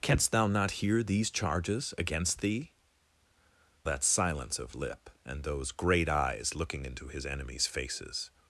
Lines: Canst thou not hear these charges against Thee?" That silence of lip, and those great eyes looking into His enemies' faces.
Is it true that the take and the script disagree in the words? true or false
false